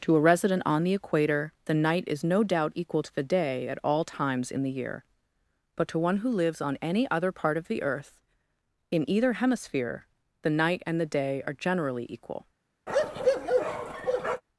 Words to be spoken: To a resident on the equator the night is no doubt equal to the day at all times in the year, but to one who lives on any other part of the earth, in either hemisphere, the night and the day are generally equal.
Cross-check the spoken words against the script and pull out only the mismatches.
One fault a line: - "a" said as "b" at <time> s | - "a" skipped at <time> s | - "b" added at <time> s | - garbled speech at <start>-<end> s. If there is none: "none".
none